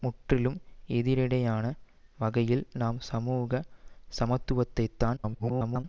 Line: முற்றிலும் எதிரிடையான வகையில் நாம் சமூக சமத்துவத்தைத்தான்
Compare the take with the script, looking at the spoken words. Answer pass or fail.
fail